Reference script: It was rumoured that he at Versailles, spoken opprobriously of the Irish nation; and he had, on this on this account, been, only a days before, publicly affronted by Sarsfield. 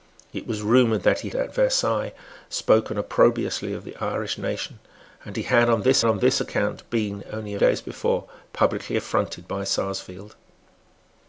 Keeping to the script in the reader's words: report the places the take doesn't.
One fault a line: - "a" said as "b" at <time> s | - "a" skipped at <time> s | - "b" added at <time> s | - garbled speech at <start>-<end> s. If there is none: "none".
none